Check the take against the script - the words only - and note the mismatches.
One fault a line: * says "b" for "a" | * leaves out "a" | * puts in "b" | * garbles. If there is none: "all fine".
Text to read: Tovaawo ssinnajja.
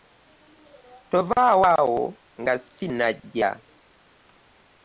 * puts in "awo nga"